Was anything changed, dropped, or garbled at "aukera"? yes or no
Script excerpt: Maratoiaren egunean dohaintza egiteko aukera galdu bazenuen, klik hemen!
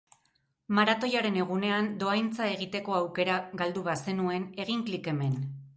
no